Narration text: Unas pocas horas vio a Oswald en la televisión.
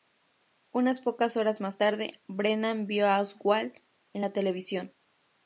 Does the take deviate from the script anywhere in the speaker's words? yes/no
yes